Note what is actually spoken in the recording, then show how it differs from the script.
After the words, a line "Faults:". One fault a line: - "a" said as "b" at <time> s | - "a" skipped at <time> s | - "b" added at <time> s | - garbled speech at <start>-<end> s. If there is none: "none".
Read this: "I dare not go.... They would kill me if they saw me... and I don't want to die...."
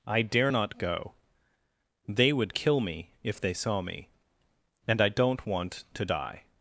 "I dare not go.... They would kill me if they saw me... and I don't want to die...."
Faults:
none